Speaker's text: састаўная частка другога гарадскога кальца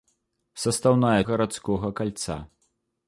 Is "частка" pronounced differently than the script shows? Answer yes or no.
yes